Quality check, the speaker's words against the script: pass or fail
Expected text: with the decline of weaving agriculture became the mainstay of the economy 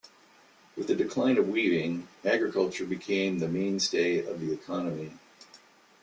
pass